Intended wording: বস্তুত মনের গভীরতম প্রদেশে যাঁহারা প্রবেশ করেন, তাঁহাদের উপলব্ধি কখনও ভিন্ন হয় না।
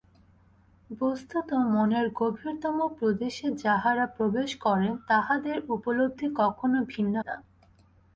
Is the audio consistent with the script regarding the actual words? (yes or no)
no